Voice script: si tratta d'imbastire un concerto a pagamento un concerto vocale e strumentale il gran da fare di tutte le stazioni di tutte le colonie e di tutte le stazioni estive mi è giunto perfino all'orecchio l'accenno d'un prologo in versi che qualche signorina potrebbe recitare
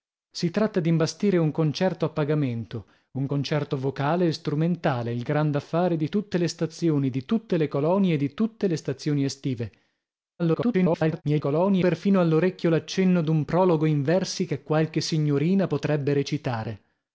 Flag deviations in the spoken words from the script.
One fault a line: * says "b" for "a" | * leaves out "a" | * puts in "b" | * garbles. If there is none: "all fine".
* garbles
* says "colonie" for "giunto"